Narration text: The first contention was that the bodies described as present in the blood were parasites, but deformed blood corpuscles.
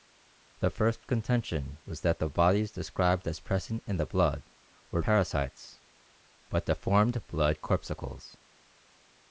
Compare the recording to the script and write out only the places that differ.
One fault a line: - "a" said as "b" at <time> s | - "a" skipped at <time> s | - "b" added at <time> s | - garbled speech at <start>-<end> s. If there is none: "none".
none